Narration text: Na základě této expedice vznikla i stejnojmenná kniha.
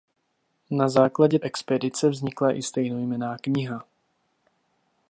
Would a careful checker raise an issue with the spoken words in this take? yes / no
yes